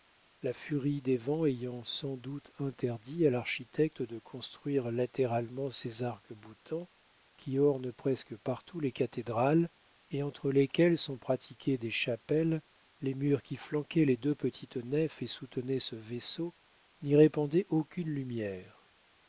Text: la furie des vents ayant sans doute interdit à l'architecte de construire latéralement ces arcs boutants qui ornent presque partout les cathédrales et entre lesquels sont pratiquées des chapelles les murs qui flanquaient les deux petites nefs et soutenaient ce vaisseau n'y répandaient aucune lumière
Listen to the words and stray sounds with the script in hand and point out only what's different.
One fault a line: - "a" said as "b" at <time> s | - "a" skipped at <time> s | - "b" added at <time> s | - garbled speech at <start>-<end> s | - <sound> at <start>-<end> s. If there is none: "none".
none